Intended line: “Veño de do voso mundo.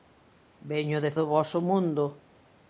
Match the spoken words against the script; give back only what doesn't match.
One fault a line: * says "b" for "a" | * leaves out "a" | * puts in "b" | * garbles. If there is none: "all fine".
all fine